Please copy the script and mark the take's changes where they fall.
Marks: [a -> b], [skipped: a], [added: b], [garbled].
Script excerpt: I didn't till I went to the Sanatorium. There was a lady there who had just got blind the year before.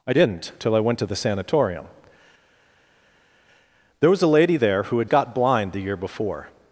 I didn't till I went to the Sanatorium. There was a lady there who had [skipped: just] got blind the year before.